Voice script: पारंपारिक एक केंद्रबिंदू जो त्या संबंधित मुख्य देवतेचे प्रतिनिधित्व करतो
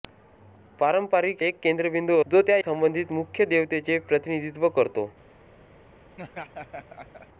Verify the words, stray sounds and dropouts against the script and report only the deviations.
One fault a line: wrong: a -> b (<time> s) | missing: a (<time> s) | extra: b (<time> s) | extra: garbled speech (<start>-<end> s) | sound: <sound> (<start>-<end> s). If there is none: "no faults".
sound: laugh (6.1-7.3 s)